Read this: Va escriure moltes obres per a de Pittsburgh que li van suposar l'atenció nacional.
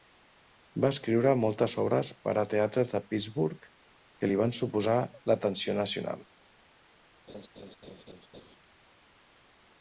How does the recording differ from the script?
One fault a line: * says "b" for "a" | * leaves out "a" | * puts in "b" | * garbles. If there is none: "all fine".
* puts in "teatres"